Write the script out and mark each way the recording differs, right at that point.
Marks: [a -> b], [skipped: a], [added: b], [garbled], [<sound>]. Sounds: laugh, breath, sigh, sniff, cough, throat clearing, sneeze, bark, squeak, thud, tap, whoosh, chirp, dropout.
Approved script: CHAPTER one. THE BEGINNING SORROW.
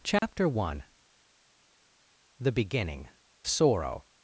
CHAPTER [dropout] one. THE BEGINNING SORROW.